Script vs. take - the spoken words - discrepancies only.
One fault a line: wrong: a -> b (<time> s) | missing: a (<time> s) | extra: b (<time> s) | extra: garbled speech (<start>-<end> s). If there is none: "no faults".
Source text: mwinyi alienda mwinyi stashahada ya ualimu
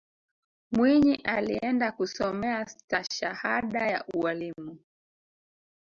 wrong: mwinyi -> kusomea (1.9 s)